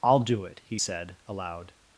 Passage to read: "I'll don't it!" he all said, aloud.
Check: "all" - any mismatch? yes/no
yes